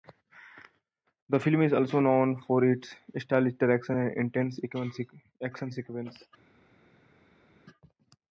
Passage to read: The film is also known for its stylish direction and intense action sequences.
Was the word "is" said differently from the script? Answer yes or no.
no